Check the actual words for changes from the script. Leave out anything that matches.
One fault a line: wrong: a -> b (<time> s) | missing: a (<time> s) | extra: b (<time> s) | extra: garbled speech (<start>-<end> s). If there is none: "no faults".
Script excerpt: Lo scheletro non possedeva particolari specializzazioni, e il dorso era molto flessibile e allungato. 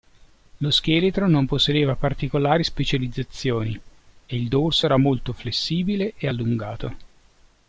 no faults